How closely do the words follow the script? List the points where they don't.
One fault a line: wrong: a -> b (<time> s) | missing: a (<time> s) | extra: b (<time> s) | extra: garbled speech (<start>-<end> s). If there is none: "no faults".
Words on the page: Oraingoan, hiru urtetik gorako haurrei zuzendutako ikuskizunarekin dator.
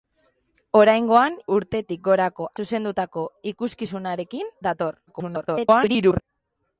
missing: hiru (1.4 s)
missing: haurrei (2.5 s)
extra: garbled speech (5.1-6.2 s)